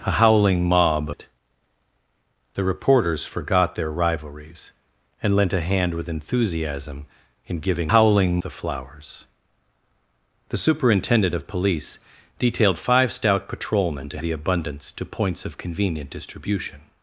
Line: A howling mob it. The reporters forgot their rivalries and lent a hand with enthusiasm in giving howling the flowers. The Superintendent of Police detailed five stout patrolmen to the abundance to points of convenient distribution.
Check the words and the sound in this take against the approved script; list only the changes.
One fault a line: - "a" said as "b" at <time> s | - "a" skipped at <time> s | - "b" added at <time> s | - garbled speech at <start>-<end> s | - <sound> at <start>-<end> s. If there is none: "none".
none